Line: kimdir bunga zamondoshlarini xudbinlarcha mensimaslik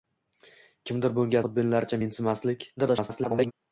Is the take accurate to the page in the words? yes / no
no